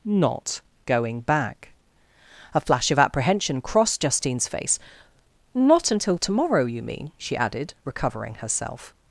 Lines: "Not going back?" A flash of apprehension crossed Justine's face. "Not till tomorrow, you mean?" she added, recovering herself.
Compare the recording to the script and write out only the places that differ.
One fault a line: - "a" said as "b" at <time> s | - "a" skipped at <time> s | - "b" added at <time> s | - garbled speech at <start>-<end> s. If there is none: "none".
- "till" said as "until" at 5.9 s